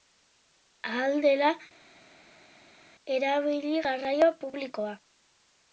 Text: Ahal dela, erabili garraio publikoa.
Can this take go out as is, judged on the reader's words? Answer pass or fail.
pass